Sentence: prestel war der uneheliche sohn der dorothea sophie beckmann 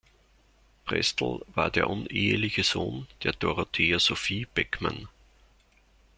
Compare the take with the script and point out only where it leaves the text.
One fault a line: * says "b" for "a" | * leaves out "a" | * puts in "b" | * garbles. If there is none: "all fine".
all fine